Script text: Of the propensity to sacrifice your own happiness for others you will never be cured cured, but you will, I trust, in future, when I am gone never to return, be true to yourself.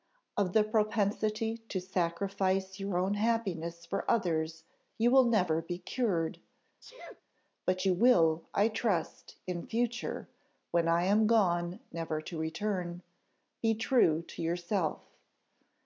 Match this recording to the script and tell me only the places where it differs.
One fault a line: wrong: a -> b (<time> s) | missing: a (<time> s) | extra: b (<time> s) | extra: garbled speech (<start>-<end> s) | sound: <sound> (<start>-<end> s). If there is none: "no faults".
missing: cured (6.4 s)
sound: sneeze (6.8-7.2 s)